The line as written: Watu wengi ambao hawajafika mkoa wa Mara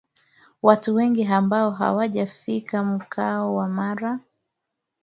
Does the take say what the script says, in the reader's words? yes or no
yes